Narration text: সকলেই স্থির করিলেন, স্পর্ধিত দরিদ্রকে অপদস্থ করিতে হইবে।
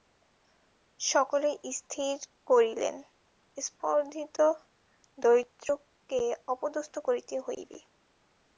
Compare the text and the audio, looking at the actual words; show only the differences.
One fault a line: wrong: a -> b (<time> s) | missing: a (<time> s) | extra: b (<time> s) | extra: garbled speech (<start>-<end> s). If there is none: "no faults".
no faults